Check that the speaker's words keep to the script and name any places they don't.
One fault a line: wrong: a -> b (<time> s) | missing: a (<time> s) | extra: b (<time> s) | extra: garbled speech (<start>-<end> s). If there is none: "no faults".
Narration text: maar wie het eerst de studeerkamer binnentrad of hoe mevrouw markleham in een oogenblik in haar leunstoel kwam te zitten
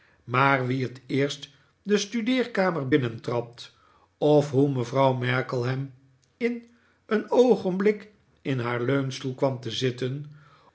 no faults